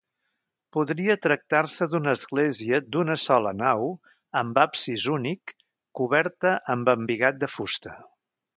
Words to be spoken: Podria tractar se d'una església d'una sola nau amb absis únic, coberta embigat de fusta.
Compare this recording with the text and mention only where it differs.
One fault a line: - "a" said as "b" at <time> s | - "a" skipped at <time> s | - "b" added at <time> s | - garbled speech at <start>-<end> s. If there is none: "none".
- "amb" added at 6.8 s